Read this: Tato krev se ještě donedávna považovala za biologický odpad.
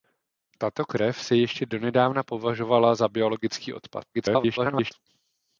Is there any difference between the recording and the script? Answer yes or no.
yes